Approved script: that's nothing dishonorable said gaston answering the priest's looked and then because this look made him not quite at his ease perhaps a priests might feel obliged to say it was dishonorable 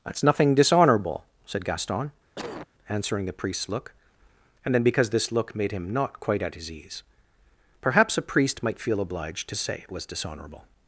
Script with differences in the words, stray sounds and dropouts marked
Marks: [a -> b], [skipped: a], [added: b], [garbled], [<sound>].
that's nothing dishonorable said gaston [cough] answering the priest's [looked -> look] and then because this look made him not quite at his ease perhaps a [priests -> priest] might feel obliged to say it was dishonorable